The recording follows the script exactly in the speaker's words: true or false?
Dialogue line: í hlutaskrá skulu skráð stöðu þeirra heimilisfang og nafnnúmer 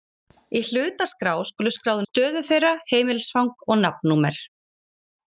true